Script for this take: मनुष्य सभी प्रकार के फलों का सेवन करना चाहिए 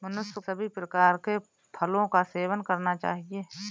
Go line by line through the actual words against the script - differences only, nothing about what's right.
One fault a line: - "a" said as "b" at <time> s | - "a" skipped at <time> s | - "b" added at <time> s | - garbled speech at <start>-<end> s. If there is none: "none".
none